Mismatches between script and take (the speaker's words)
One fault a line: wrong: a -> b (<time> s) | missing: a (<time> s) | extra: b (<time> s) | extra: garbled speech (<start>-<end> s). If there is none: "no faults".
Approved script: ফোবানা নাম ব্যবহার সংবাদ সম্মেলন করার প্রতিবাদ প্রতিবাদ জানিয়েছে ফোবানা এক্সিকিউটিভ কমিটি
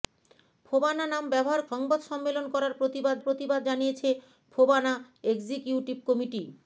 no faults